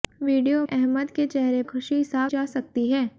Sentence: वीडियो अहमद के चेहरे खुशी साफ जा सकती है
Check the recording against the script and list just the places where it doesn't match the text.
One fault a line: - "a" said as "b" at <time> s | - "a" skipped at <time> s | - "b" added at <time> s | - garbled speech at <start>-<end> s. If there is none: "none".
none